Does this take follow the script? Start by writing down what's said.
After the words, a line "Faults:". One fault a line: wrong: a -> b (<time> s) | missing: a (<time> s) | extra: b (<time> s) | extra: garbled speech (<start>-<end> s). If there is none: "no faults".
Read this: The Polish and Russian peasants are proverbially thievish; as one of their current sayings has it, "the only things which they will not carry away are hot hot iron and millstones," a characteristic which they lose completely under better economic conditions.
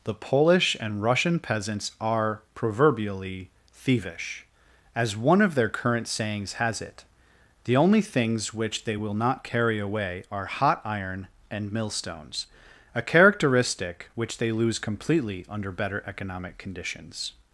The Polish and Russian peasants are proverbially thievish; as one of their current sayings has it, "the only things which they will not carry away are hot iron and millstones," a characteristic which they lose completely under better economic conditions.
Faults:
missing: hot (10.8 s)